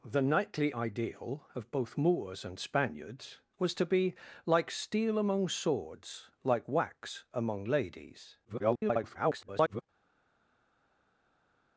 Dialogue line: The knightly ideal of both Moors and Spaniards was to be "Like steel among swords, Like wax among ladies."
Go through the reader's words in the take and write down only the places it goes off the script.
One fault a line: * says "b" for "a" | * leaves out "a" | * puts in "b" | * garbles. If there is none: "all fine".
* garbles